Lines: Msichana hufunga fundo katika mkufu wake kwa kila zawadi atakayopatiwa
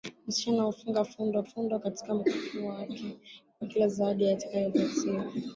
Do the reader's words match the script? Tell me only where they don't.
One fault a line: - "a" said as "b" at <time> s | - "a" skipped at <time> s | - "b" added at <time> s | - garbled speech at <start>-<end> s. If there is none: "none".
- "fundo" added at 1.4 s